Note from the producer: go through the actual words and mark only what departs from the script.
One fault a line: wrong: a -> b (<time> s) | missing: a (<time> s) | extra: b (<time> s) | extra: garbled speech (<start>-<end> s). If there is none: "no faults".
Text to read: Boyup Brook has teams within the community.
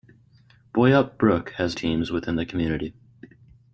no faults